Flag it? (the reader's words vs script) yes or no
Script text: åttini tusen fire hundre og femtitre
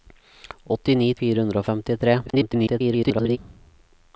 yes